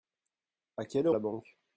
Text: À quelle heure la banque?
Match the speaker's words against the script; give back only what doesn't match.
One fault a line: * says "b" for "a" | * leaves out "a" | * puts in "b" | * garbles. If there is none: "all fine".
all fine